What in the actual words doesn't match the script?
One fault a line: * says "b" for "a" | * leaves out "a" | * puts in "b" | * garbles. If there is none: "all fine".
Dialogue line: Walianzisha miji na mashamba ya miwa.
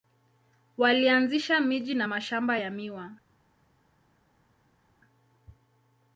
all fine